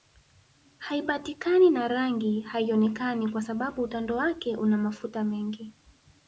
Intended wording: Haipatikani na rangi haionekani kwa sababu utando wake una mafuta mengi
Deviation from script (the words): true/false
false